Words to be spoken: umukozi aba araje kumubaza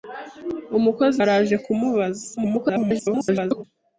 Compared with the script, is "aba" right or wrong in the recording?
wrong